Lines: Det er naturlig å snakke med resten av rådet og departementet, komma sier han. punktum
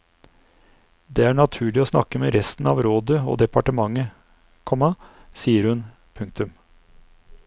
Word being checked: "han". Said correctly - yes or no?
no